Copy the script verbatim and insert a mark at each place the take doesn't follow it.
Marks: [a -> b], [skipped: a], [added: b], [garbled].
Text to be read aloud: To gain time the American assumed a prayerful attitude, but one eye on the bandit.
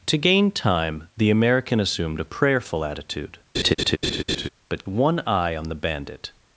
To gain time the American assumed a prayerful attitude, but one eye on the bandit.